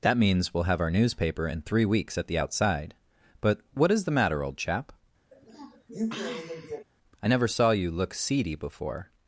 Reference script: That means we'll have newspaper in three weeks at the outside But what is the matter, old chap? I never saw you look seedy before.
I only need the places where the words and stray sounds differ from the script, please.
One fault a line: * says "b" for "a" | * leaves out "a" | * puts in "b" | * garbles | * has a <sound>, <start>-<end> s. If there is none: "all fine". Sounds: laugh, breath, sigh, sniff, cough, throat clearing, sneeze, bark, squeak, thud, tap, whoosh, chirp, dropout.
* puts in "our"
* has a sniff, 5.3-6.8 s